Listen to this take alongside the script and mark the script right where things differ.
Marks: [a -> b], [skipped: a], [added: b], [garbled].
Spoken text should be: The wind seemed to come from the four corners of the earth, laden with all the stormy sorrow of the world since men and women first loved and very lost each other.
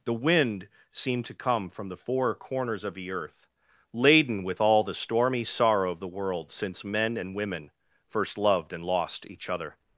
The wind seemed to come from the four corners of the earth, laden with all the stormy sorrow of the world since men and women first loved and [skipped: very] lost each other.